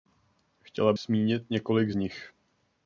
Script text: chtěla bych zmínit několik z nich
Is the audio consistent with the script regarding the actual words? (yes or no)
no